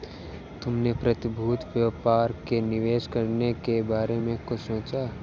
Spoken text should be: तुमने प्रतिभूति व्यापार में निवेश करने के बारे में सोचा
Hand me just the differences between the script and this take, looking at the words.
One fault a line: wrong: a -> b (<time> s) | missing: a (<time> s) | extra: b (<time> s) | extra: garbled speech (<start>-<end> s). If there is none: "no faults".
extra: कुछ (4.5 s)